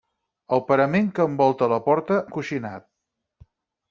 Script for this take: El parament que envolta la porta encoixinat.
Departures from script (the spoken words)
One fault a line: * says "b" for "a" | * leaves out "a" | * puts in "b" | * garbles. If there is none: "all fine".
all fine